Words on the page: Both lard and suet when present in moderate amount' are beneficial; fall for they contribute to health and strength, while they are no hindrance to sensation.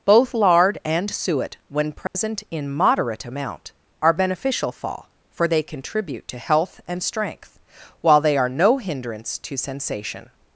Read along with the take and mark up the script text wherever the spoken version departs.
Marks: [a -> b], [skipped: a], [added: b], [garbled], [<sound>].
Both lard and suet when present [dropout] in moderate amount' are beneficial; fall for they contribute to health and strength, while they are no hindrance to sensation.